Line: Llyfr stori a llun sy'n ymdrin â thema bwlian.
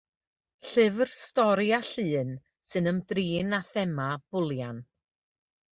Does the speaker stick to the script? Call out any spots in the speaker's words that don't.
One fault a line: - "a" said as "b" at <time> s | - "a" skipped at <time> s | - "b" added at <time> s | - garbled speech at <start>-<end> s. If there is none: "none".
none